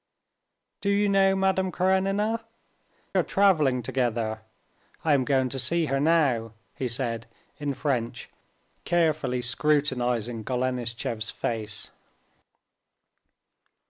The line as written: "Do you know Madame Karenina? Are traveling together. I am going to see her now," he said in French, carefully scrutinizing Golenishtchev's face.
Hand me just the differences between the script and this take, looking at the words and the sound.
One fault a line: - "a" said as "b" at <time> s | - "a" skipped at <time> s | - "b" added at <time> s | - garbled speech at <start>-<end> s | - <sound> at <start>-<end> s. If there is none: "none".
none